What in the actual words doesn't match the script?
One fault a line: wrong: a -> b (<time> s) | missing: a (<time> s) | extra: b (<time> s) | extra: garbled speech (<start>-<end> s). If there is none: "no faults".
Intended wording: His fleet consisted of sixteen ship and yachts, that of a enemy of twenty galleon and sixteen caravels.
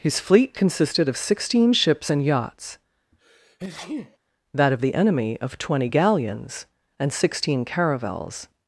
wrong: ship -> ships (1.7 s)
wrong: a -> the (4.8 s)
wrong: galleon -> galleons (5.8 s)